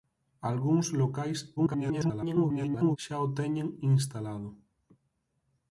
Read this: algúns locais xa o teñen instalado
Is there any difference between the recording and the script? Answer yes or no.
yes